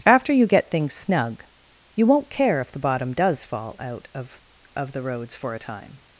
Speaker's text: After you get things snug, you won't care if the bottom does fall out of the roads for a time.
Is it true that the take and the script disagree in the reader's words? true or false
true